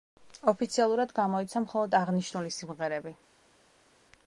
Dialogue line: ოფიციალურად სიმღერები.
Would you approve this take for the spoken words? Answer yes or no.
no